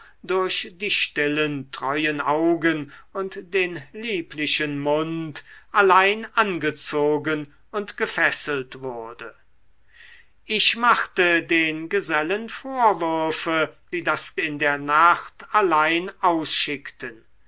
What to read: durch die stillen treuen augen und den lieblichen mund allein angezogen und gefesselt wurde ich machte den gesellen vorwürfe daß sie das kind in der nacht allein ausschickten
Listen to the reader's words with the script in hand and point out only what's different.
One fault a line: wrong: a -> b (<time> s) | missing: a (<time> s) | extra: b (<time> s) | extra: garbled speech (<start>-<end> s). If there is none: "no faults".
missing: daß (13.8 s)
missing: kind (14.4 s)